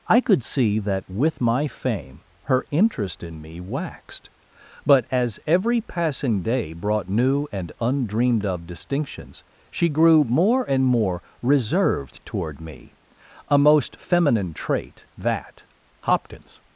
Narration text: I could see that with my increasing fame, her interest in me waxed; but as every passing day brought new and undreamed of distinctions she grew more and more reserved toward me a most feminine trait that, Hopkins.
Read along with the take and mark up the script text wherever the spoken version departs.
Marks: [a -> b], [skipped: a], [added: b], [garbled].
I could see that with my [skipped: increasing] fame, her interest in me waxed; but as every passing day brought new and undreamed of distinctions she grew more and more reserved toward me a most feminine trait that, Hopkins.